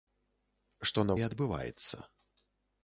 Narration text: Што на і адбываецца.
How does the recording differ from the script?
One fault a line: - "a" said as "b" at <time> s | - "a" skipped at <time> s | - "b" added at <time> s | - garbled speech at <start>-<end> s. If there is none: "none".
none